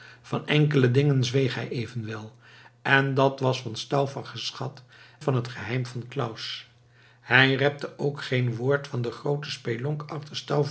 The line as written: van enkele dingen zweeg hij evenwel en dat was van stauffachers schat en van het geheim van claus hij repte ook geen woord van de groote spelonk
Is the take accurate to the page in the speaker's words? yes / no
no